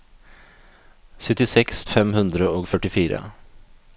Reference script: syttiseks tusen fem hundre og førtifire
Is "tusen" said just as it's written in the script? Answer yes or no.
no